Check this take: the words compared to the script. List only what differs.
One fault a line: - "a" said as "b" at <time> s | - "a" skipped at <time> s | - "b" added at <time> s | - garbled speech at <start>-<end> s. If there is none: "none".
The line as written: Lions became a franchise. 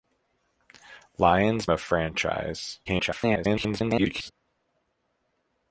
- "became" skipped at 1.7 s
- garbled speech at 2.9-4.3 s